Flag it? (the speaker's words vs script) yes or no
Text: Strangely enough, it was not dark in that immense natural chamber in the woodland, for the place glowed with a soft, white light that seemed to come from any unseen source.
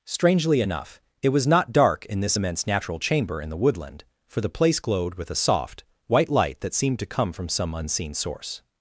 yes